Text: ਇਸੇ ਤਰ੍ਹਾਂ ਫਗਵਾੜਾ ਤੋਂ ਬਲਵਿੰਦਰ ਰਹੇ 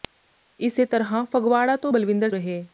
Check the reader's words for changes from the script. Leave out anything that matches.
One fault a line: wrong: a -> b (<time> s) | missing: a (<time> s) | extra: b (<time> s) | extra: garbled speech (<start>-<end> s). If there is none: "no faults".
no faults